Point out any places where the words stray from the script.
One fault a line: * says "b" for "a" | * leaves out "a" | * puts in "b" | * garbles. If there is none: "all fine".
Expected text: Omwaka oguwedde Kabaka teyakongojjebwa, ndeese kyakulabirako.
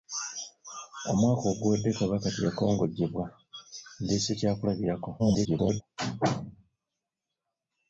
* garbles